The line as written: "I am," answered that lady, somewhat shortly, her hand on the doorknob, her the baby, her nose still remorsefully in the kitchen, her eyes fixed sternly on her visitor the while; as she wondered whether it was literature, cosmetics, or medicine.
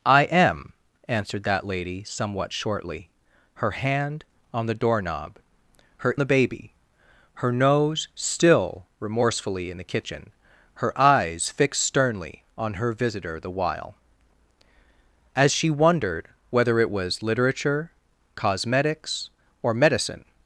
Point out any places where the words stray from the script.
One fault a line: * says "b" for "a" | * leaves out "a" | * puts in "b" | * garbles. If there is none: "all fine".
all fine